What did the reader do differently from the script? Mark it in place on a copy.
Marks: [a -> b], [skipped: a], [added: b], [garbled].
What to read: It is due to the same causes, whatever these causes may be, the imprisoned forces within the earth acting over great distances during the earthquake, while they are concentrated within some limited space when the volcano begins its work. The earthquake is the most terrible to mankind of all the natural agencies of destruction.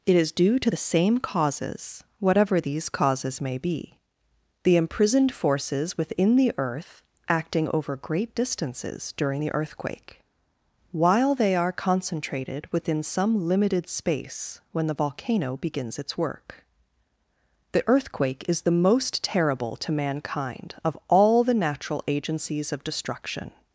It is due to the same causes, whatever these causes may be, the imprisoned forces within the earth acting over great distances during the earthquake, while they are concentrated within some limited space when the volcano begins its work. The earthquake is the most terrible to mankind of all the natural agencies of destruction.